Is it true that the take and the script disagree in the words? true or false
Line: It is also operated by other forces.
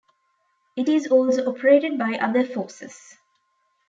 false